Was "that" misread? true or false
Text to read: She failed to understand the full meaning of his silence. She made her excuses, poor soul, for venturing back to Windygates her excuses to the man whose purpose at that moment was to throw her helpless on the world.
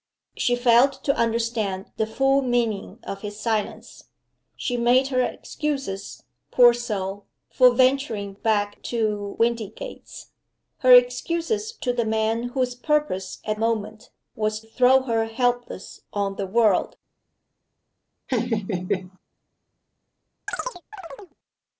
true